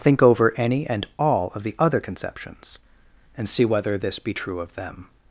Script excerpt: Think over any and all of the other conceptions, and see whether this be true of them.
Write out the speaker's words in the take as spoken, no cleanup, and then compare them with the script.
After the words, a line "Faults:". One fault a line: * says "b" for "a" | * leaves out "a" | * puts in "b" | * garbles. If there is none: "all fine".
Think over any and all of the other conceptions, and see whether this be true of them.
Faults:
all fine